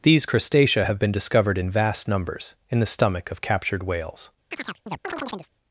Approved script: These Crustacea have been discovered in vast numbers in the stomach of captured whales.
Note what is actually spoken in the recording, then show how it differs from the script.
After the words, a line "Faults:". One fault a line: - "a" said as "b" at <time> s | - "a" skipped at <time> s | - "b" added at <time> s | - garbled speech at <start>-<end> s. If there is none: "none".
These Crustacea have been discovered in vast numbers in the stomach of captured whales.
Faults:
none